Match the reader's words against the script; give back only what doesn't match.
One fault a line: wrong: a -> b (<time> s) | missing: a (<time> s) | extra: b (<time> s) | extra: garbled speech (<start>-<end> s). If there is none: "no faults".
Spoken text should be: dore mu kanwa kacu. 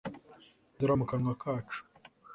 no faults